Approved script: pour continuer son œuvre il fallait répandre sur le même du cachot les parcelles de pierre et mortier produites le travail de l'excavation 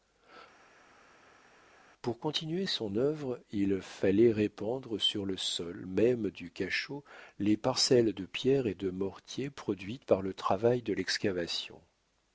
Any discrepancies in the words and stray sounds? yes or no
yes